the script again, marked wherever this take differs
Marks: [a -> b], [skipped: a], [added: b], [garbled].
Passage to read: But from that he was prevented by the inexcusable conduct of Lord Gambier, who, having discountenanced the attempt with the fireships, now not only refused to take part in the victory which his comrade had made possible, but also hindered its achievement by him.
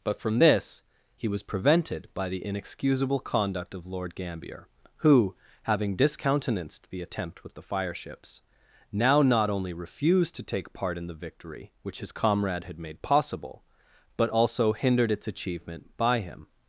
But from [that -> this] he was prevented by the inexcusable conduct of Lord Gambier, who, having discountenanced the attempt with the fireships, now not only refused to take part in the victory which his comrade had made possible, but also hindered its achievement by him.